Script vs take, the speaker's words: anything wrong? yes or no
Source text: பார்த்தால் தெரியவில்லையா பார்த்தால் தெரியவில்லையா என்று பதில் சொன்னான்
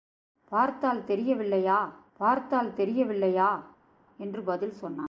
no